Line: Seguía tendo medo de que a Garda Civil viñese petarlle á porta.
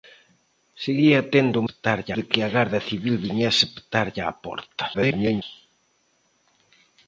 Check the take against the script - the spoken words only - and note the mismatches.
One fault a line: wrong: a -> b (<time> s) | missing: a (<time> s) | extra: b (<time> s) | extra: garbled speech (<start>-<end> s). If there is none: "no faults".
wrong: medo -> petarlle (1.7 s)
extra: garbled speech (4.9-5.4 s)